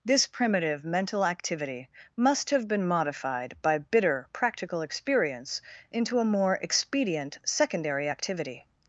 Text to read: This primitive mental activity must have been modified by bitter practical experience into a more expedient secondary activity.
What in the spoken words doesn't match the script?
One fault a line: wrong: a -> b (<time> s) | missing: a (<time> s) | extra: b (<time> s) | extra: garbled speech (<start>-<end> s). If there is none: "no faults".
no faults